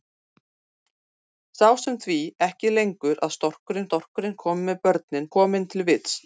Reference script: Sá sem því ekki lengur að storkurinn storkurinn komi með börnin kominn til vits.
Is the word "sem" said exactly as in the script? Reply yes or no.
yes